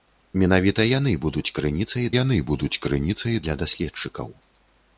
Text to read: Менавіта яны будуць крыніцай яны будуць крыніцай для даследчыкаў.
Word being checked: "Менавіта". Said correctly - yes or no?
yes